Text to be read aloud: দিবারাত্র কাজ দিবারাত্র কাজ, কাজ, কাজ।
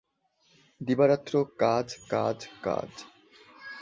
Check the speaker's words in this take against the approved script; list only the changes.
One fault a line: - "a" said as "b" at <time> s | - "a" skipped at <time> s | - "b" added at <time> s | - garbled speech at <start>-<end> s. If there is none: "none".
- "দিবারাত্র কাজ" skipped at 1.9 s